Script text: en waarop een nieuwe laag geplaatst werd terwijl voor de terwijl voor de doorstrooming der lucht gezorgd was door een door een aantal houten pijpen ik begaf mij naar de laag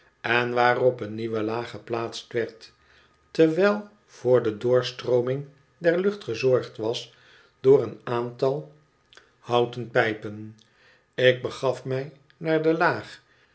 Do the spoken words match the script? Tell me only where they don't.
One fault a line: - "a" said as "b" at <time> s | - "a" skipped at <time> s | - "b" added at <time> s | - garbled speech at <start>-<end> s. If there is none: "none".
- "terwijl voor de" skipped at 4.6 s
- "door een" skipped at 8.0 s